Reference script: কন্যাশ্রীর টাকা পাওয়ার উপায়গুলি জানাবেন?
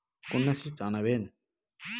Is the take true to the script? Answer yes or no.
no